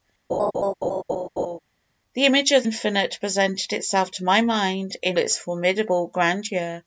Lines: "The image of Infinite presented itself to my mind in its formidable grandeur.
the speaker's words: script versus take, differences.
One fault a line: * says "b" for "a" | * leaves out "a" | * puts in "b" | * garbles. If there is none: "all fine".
all fine